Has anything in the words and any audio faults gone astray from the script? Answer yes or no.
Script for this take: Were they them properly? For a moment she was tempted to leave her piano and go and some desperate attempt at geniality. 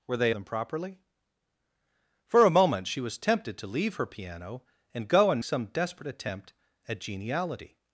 no